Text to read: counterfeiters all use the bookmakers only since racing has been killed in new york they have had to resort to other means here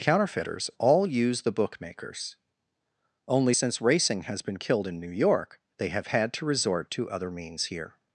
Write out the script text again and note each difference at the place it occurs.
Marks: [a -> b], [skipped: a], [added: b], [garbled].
counterfeiters all use the bookmakers only since racing has been killed in new york they have had to resort to other means here